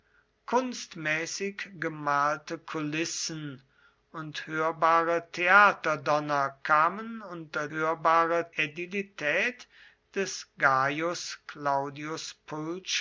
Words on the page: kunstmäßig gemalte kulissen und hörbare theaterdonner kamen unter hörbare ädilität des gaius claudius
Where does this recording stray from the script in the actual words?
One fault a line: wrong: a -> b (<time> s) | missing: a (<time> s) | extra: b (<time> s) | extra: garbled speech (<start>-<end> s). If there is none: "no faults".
no faults